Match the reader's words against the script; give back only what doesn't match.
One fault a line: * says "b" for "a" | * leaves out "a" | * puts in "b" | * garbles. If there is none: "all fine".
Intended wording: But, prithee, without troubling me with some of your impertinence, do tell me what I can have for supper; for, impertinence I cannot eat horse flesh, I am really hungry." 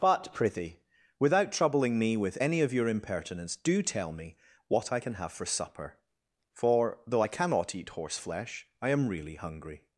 * says "any" for "some"
* says "though" for "impertinence"